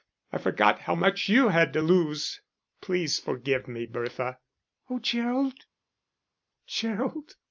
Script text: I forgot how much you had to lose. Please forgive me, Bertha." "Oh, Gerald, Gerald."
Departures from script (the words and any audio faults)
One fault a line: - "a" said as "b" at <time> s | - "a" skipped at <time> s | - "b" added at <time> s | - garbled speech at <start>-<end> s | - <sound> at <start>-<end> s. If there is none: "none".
none